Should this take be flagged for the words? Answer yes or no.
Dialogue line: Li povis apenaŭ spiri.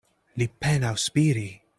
yes